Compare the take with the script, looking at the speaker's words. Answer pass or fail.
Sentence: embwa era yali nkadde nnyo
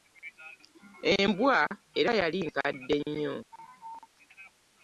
pass